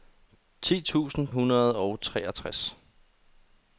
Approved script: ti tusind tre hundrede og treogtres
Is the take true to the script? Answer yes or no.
no